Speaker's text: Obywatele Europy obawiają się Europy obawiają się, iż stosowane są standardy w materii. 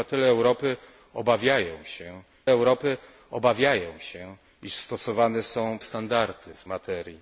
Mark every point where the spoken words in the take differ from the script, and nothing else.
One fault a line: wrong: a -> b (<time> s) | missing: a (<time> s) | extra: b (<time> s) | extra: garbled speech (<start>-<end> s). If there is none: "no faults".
no faults